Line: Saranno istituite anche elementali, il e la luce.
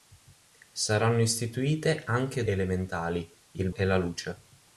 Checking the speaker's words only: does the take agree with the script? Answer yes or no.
yes